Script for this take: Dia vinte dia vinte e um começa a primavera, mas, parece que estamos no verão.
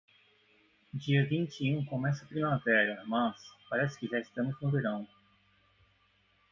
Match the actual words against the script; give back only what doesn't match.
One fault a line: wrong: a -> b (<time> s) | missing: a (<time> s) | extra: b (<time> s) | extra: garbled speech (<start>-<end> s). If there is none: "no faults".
missing: dia vinte (1.6 s)
extra: já (4.1 s)